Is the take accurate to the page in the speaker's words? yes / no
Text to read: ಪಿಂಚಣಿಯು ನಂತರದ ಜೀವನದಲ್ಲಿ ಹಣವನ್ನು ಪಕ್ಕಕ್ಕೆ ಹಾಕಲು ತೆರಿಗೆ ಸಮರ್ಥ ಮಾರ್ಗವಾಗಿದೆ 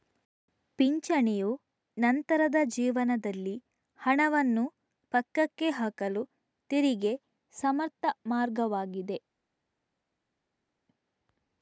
yes